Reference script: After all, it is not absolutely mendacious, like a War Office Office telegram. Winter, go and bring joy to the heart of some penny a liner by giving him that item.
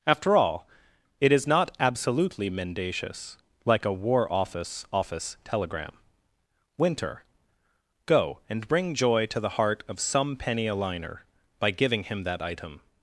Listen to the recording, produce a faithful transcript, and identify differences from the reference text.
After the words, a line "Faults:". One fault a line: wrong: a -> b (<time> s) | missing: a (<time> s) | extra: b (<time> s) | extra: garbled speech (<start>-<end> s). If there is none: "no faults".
After all, it is not absolutely mendacious, like a War Office Office telegram. Winter, go and bring joy to the heart of some penny a liner by giving him that item.
Faults:
no faults